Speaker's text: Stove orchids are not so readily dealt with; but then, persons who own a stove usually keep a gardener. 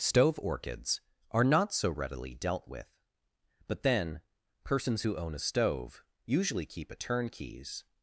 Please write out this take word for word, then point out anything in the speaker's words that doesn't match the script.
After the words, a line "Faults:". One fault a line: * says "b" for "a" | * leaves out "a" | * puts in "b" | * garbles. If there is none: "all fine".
Stove orchids are not so readily dealt with; but then, persons who own a stove usually keep a turnkeys.
Faults:
* says "turnkeys" for "gardener"